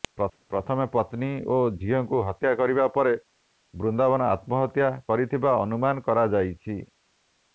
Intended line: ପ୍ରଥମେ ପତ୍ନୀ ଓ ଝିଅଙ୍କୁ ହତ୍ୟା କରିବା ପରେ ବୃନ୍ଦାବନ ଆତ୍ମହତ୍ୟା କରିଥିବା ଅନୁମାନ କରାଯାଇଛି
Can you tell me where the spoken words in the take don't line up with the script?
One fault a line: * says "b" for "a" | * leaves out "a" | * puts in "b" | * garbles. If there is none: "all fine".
all fine